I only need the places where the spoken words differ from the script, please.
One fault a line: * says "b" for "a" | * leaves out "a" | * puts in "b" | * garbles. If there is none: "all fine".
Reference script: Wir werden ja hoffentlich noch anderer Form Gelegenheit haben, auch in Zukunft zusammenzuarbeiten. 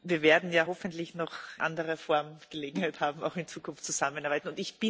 all fine